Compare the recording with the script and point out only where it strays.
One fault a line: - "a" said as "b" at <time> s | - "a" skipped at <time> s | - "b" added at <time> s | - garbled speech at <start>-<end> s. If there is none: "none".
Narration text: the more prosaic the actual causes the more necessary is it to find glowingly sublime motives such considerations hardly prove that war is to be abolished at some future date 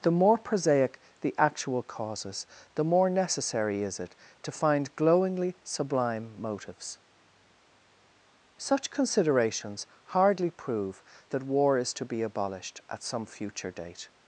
none